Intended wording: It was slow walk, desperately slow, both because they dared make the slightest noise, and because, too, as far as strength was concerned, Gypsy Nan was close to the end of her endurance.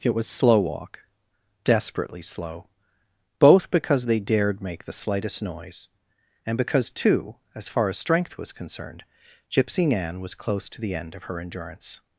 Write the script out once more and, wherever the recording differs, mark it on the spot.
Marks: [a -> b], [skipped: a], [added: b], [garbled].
It was slow walk, desperately slow, both because they dared make the slightest noise, and because, too, as far as strength was concerned, Gypsy Nan was close to the end of her endurance.